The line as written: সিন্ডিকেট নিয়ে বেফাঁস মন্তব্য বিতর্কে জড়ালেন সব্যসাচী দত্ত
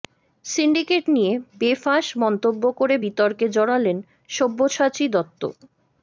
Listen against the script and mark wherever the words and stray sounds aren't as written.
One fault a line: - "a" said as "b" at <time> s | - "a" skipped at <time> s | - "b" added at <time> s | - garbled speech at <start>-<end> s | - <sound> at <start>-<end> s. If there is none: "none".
- "করে" added at 2.8 s